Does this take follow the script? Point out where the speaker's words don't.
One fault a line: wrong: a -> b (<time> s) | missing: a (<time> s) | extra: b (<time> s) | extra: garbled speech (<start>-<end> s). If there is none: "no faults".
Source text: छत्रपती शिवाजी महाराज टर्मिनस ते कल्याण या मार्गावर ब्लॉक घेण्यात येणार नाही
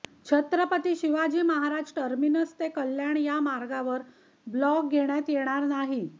no faults